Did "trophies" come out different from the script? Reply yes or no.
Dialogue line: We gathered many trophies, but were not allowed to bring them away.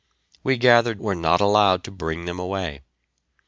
yes